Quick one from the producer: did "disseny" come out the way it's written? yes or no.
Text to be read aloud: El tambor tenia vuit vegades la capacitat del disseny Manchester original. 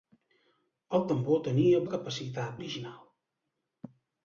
no